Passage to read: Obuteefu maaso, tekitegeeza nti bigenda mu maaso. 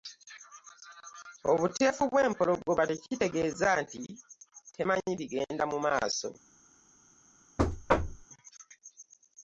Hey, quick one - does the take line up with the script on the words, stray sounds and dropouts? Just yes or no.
no